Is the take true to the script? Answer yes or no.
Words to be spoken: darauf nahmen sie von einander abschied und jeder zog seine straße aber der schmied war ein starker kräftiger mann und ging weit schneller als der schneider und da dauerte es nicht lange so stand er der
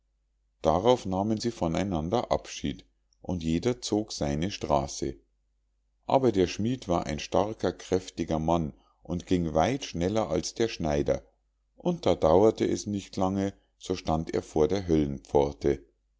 no